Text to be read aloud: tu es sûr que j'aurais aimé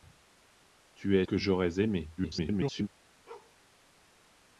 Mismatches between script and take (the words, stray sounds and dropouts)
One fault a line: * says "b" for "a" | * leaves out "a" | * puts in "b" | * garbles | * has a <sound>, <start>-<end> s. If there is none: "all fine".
* leaves out "sûr"
* garbles
* has a bark, 3.3-3.6 s